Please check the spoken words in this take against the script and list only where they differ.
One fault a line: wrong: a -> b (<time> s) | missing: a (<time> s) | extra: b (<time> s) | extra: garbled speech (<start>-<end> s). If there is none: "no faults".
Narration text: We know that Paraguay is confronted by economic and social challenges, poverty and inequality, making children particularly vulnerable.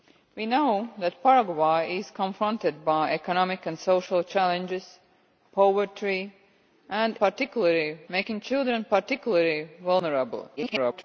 wrong: inequality -> particularly (7.2 s)
extra: garbled speech (10.6-11.0 s)